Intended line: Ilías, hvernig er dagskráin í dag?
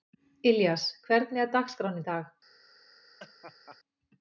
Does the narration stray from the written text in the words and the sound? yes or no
yes